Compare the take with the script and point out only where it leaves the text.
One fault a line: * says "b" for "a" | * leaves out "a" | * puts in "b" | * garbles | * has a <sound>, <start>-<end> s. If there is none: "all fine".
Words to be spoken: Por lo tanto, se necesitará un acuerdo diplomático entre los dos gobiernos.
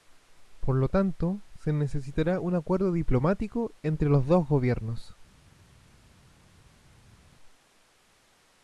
all fine